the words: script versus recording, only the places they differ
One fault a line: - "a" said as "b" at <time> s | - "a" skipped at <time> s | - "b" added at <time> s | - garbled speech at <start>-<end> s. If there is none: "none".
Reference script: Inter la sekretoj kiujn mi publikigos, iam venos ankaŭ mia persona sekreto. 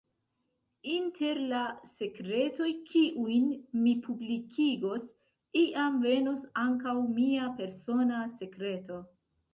none